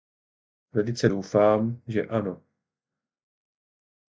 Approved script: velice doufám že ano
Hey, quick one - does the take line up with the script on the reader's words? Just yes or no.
yes